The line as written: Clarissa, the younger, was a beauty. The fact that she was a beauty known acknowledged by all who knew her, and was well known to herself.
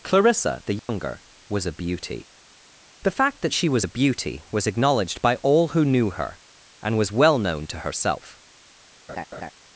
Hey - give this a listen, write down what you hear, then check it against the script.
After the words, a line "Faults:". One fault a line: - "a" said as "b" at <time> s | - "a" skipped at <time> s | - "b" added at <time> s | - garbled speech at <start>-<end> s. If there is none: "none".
Clarissa, the younger, was a beauty. The fact that she was a beauty was acknowledged by all who knew her, and was well known to herself.
Faults:
- "known" said as "was" at 4.5 s